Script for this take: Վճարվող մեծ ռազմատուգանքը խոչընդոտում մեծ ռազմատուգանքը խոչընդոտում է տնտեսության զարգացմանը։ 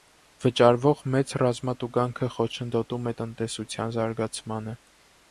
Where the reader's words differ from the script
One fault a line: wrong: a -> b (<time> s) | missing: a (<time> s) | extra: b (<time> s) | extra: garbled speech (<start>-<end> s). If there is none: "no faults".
missing: մեծ ռազմատուգանքը խոչընդոտում (3.1 s)